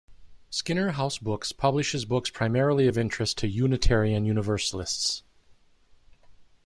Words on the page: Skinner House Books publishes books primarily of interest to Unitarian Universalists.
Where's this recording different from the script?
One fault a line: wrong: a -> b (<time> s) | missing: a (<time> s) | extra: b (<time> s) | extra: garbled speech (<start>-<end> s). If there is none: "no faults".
no faults